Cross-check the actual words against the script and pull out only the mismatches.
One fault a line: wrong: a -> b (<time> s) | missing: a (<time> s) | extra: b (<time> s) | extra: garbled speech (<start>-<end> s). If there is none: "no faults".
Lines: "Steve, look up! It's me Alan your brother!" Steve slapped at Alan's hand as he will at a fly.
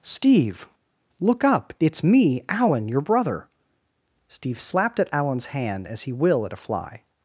no faults